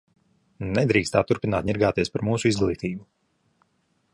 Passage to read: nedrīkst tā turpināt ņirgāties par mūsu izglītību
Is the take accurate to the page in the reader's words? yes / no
yes